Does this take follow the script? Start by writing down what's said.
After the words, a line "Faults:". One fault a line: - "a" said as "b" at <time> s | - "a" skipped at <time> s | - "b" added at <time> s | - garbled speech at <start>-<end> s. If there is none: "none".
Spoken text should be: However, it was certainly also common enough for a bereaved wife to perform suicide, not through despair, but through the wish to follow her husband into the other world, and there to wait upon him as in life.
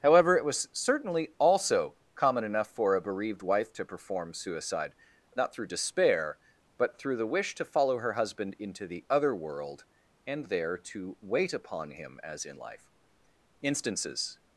However, it was certainly also common enough for a bereaved wife to perform suicide, not through despair, but through the wish to follow her husband into the other world, and there to wait upon him as in life. Instances
Faults:
- "Instances" added at 13.6 s